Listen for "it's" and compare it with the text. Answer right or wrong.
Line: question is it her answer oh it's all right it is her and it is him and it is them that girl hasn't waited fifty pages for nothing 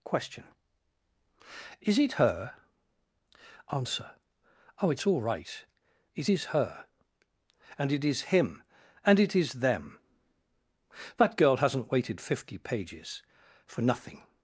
right